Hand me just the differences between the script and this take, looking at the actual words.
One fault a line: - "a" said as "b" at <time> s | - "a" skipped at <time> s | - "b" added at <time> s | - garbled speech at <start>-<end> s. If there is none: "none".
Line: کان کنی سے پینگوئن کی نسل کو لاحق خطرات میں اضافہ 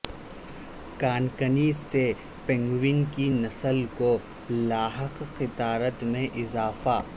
none